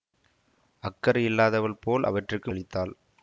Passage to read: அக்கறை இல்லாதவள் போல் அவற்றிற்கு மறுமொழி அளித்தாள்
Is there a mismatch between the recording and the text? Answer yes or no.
yes